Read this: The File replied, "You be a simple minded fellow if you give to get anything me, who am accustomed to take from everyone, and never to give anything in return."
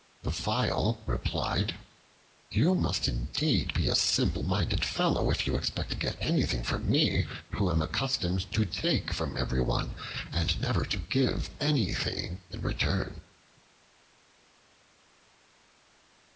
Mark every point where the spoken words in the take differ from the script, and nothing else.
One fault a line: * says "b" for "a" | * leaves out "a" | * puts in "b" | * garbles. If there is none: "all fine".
* puts in "must indeed"
* says "expect" for "give"
* puts in "from"